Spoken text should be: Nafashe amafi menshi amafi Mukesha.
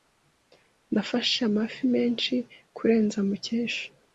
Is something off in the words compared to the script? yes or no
yes